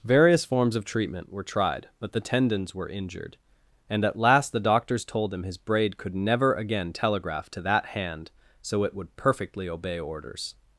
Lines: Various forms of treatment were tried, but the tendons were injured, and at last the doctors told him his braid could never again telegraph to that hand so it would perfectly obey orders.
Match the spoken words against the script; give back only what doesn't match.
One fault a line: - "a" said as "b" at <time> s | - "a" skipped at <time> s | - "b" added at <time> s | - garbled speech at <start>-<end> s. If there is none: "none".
none